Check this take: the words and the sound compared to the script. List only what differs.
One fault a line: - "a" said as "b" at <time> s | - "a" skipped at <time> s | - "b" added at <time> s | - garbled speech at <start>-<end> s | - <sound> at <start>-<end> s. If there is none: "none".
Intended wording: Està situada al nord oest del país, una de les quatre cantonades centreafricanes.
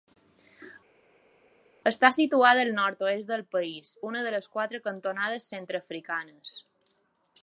none